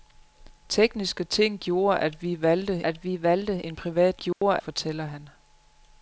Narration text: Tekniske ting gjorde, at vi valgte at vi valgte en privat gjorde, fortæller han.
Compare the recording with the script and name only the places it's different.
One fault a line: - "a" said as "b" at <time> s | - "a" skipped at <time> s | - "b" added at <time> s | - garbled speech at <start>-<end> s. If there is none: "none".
none